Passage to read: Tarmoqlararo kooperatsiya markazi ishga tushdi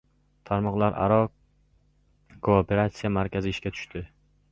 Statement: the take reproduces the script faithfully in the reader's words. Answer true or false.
true